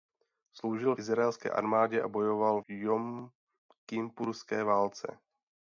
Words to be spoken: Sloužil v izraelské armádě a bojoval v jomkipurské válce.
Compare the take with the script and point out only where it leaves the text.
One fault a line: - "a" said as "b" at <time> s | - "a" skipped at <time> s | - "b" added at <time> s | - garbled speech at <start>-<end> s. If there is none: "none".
- "v" skipped at 0.9 s
- "v" skipped at 2.6 s